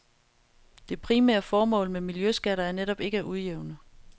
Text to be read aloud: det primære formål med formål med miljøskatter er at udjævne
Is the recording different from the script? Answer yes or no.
yes